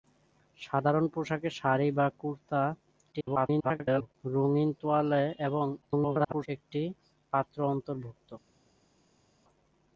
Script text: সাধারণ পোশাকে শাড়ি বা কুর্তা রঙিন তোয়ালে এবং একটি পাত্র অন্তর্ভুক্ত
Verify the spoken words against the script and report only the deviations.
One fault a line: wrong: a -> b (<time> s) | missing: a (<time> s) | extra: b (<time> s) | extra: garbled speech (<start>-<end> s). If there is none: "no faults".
extra: garbled speech (3.1-4.1 s)
extra: garbled speech (5.8-6.5 s)